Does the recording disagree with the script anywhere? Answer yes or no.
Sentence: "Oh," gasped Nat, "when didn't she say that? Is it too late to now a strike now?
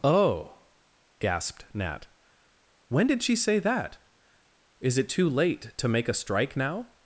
yes